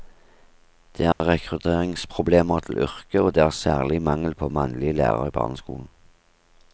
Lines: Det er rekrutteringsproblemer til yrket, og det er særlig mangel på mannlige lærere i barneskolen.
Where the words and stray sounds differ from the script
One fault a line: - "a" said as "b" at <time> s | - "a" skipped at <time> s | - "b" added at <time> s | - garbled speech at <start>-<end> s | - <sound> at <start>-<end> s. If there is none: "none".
- dropout at 1.1-1.2 s